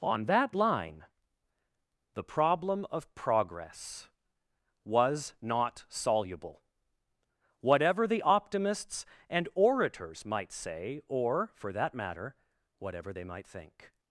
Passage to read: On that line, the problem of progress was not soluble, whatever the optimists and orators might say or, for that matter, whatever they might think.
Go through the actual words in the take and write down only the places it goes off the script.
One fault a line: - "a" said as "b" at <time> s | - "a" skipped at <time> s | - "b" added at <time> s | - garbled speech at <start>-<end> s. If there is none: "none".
none